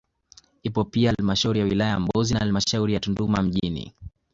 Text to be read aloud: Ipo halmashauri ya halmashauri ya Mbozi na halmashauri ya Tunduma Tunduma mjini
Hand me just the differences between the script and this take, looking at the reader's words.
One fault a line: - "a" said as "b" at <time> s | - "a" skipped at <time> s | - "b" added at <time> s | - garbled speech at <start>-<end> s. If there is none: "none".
- "pia" added at 0.8 s
- "halmashauri" said as "wilaya" at 1.6 s
- "Tunduma" skipped at 3.4 s